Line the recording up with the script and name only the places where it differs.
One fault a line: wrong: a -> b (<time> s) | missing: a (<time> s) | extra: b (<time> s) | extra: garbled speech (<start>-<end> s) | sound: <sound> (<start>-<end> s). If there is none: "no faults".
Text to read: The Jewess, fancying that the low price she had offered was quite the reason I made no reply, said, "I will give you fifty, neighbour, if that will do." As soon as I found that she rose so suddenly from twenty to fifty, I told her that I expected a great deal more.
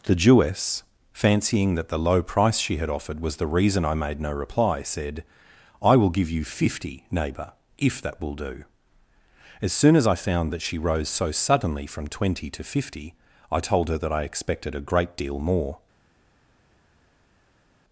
missing: quite (3.4 s)